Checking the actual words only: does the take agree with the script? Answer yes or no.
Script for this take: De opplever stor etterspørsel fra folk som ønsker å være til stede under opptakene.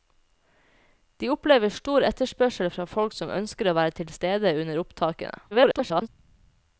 no